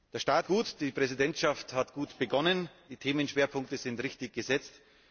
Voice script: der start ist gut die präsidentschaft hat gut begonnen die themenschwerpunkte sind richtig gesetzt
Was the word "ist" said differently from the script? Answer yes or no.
yes